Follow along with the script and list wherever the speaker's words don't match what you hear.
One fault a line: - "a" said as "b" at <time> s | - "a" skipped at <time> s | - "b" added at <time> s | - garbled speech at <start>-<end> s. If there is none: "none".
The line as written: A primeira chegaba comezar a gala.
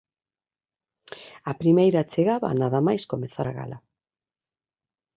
- "nada máis" added at 2.6 s